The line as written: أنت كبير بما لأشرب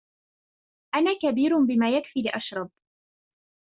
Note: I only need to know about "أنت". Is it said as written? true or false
false